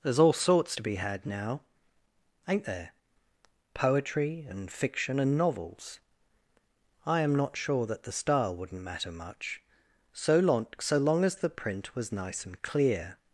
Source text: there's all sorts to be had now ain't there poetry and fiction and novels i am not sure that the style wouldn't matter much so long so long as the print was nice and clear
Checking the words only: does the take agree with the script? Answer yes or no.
yes